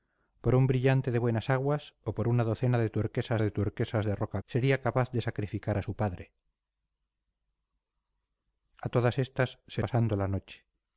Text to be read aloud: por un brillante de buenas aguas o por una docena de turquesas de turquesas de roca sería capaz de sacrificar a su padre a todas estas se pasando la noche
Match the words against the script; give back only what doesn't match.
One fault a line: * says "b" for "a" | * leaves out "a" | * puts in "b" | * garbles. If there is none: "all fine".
all fine